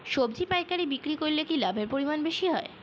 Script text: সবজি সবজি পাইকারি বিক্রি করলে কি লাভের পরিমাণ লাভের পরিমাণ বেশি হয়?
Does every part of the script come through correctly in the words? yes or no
no